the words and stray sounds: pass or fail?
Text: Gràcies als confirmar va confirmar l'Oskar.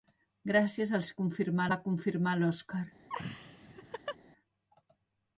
fail